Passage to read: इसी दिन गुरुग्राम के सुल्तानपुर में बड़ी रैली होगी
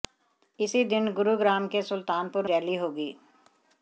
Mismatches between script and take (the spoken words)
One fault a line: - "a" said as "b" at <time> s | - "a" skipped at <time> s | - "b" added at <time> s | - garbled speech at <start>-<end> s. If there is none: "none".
- "में बड़ी" skipped at 2.5 s